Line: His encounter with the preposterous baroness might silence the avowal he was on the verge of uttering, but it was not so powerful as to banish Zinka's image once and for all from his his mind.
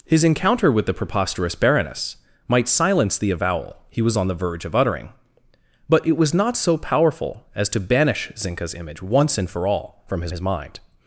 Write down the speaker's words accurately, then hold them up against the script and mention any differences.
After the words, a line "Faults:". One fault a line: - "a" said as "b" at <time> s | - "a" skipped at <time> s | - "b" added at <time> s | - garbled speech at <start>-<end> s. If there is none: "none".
His encounter with the preposterous baroness might silence the avowal he was on the verge of uttering, but it was not so powerful as to banish Zinka's image once and for all from his his mind.
Faults:
none